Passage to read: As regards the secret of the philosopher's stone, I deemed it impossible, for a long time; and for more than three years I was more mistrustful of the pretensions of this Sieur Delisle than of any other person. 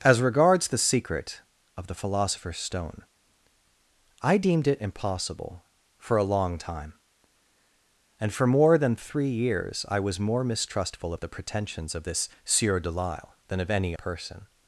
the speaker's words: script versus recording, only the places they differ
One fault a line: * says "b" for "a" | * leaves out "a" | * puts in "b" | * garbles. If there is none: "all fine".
* leaves out "other"